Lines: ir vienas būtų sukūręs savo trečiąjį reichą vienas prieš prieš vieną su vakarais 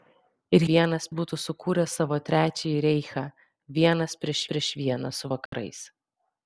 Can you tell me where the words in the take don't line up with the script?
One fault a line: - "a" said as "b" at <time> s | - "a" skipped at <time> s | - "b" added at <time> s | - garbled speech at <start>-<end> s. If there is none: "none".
none